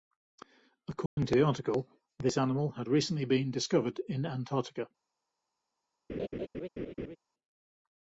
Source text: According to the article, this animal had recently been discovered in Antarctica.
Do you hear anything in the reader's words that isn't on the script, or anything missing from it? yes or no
no